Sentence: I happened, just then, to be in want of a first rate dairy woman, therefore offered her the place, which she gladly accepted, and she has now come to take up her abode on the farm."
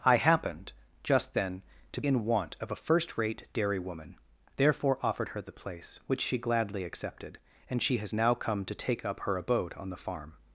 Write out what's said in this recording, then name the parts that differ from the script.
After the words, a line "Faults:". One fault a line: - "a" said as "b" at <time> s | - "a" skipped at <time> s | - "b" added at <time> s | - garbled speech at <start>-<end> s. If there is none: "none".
I happened, just then, to in want of a first rate dairy woman, therefore offered her the place, which she gladly accepted, and she has now come to take up her abode on the farm."
Faults:
- "be" skipped at 2.0 s